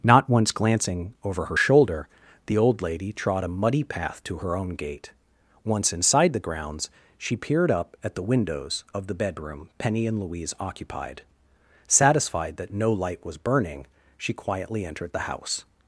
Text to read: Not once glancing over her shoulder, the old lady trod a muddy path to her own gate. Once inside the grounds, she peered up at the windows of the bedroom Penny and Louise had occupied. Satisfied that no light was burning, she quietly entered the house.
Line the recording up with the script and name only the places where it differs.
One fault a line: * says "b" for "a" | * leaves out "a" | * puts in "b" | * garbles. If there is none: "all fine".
* leaves out "had"